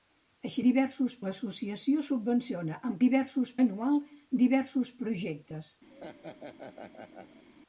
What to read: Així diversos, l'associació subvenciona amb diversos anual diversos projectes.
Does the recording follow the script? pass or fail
pass